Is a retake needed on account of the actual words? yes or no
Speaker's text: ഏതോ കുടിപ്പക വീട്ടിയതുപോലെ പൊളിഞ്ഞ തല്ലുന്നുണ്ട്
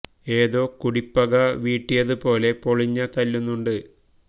no